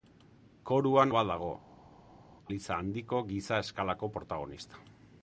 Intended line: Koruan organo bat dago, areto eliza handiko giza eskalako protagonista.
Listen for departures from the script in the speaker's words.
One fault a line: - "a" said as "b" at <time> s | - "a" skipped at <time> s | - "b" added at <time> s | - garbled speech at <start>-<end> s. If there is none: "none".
- "organo" skipped at 1.1 s
- "areto" skipped at 1.5 s